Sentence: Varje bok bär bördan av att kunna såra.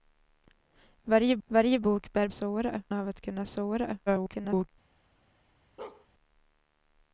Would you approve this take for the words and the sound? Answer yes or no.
no